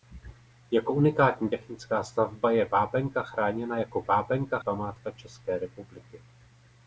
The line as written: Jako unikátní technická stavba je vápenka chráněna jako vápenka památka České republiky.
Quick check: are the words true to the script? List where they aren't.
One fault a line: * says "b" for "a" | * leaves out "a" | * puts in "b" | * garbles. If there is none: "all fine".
all fine